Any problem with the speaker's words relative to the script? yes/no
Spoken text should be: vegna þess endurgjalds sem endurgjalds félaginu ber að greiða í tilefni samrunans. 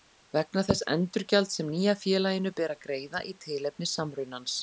yes